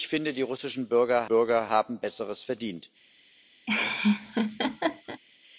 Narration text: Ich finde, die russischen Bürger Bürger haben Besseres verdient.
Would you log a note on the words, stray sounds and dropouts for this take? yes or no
yes